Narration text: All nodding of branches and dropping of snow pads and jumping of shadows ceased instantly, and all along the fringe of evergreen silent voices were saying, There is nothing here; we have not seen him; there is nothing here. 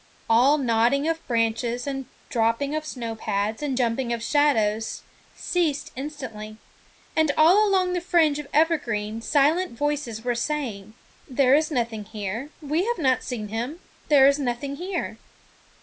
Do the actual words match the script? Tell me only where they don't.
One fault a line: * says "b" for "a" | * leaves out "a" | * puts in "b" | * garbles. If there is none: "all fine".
all fine